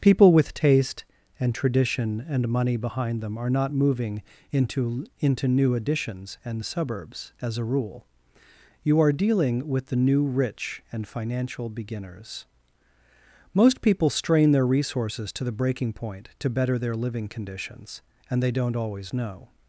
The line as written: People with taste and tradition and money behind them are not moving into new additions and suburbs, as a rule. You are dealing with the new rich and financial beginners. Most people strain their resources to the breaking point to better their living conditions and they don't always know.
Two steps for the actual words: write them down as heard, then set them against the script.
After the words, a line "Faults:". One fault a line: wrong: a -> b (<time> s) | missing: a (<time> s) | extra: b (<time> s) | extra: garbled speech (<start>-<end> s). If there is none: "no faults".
People with taste and tradition and money behind them are not moving into into new additions and suburbs, as a rule. You are dealing with the new rich and financial beginners. Most people strain their resources to the breaking point to better their living conditions and they don't always know.
Faults:
extra: into (5.2 s)